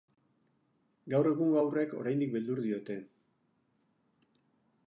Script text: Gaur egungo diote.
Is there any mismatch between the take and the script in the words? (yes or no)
yes